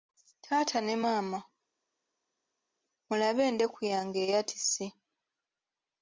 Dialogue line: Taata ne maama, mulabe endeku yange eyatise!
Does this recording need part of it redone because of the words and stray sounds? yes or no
no